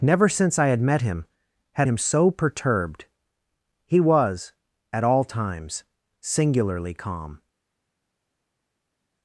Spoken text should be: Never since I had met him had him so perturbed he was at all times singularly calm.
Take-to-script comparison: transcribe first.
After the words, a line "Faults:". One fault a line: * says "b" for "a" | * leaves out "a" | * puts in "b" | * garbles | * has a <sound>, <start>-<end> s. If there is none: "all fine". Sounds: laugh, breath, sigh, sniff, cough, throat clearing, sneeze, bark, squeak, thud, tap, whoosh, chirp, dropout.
Never since I had met him had him so perturbed he was at all times singularly calm.
Faults:
all fine